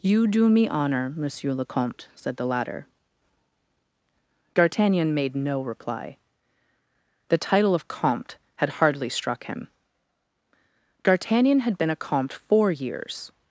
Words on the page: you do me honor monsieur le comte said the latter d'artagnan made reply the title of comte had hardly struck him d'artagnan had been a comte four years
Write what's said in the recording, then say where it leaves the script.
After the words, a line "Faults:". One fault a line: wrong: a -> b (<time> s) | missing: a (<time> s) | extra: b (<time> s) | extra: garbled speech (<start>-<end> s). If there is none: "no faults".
you do me honor monsieur le comte said the latter d'artagnan made no reply the title of comte had hardly struck him d'artagnan had been a comte four years
Faults:
extra: no (5.3 s)